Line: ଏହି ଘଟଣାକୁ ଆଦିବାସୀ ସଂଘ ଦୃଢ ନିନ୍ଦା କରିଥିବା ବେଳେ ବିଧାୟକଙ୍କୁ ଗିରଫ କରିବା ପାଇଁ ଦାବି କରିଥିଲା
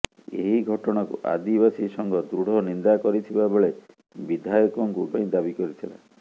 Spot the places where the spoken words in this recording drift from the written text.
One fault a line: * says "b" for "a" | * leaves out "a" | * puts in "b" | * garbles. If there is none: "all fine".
* leaves out "ଗିରଫ କରିବା"